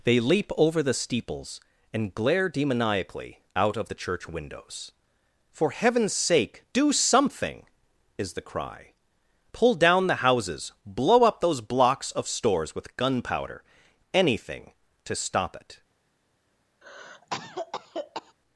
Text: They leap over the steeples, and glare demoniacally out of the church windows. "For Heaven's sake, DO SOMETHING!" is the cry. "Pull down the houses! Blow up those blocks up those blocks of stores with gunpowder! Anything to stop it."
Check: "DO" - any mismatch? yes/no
no